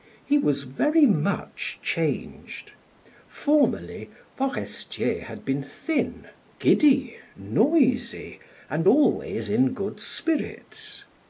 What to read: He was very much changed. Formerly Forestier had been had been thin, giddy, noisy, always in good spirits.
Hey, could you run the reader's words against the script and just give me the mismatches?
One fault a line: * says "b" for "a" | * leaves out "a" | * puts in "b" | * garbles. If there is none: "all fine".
* leaves out "had been"
* puts in "and"